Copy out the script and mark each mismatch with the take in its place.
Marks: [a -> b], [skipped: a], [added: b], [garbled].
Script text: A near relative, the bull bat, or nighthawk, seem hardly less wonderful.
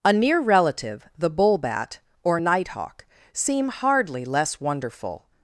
A near relative, the bull bat, or nighthawk, seem hardly less wonderful.